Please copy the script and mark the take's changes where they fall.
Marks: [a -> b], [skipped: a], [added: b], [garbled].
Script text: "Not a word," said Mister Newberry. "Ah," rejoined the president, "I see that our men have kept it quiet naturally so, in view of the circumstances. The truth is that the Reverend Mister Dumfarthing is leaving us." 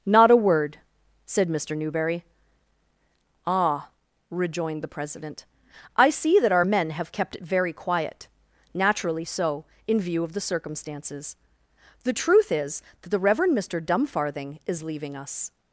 "Not a word," said Mister Newberry. "Ah," rejoined the president, "I see that our men have kept it [added: very] quiet naturally so, in view of the circumstances. The truth is that the Reverend Mister Dumfarthing is leaving us."